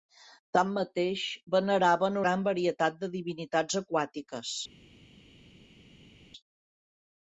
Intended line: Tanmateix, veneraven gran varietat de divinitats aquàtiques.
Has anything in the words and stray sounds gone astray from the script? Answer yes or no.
no